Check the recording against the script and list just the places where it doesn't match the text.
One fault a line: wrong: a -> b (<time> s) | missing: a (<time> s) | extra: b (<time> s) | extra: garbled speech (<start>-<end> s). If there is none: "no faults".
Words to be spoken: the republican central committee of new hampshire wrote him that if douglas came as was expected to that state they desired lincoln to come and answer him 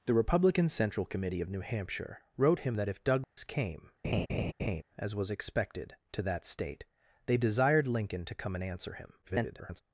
extra: garbled speech (9.2-9.8 s)